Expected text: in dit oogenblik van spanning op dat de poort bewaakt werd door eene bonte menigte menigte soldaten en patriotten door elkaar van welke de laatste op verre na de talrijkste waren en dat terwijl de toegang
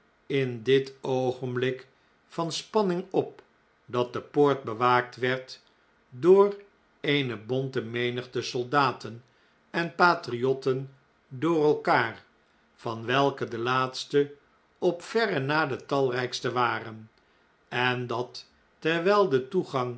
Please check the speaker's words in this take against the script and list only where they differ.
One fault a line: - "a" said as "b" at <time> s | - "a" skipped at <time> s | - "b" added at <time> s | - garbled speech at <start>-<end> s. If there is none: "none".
- "menigte" skipped at 8.4 s